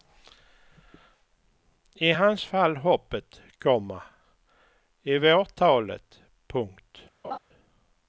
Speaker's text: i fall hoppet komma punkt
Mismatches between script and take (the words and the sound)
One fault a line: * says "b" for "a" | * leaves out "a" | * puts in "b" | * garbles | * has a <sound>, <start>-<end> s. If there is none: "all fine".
* puts in "hans"
* puts in "i vårt talet"
* has a laugh, 7.2-7.4 s